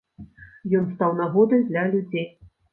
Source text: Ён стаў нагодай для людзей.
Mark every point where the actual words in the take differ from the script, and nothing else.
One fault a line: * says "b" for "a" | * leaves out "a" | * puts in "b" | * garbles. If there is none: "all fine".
all fine